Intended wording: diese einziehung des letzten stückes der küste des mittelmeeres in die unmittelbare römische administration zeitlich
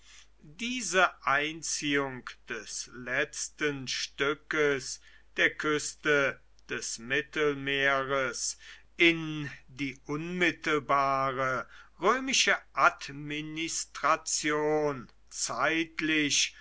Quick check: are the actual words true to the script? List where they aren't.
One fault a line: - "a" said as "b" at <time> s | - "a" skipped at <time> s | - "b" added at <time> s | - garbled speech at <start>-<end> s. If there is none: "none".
none